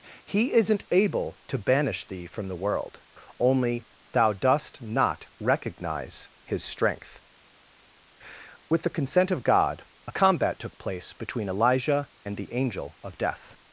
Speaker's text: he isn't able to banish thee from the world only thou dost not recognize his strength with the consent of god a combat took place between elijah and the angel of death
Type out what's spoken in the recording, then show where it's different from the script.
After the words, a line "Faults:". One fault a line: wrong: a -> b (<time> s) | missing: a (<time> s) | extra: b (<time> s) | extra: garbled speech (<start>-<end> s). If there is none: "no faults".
he isn't able to banish thee from the world only thou dost not recognize his strength with the consent of god a combat took place between elijah and the angel of death
Faults:
no faults